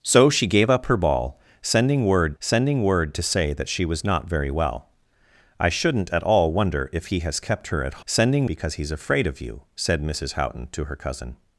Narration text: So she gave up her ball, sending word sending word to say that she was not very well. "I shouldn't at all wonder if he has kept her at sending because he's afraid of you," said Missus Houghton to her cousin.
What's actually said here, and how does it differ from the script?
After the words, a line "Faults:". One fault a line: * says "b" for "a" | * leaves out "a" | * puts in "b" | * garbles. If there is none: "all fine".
So she gave up her ball, sending word sending word to say that she was not very well. "I shouldn't at all wonder if he has kept her at sending because he's afraid of you," said Missus Houghton to her cousin.
Faults:
all fine